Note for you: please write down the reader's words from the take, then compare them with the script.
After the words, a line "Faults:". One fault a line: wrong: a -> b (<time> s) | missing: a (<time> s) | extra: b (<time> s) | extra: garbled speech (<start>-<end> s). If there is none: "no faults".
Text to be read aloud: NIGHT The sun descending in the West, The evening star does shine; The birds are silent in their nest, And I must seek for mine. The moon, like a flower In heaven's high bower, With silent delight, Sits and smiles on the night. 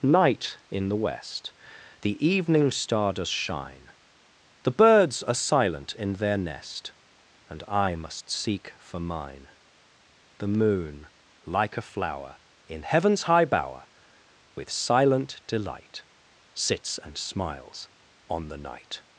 NIGHT in the West, The evening star does shine; The birds are silent in their nest, And I must seek for mine. The moon, like a flower In heaven's high bower, With silent delight, Sits and smiles on the night.
Faults:
missing: The sun descending (0.6 s)